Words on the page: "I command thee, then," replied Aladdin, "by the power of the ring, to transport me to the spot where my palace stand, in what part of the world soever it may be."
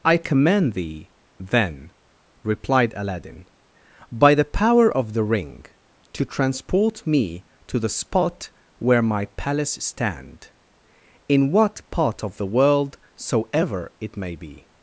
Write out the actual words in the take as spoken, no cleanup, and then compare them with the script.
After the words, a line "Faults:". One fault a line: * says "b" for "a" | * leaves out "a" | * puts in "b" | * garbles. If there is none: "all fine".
"I command thee, then," replied Aladdin, "by the power of the ring, to transport me to the spot where my palace stand, in what part of the world soever it may be."
Faults:
all fine